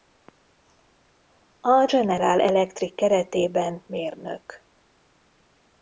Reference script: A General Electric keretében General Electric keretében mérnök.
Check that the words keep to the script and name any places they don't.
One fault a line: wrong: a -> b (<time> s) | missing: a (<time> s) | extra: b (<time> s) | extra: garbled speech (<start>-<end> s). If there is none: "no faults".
missing: General Electric keretében (3.8 s)